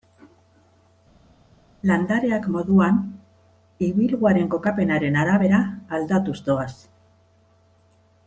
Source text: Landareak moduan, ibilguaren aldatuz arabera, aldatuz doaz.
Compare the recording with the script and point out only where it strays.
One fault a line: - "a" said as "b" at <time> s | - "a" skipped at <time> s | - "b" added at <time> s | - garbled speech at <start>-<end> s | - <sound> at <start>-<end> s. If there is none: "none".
- "aldatuz" said as "kokapenaren" at 4.6 s